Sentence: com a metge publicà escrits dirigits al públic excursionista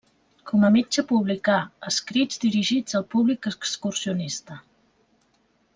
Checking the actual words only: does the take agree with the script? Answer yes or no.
yes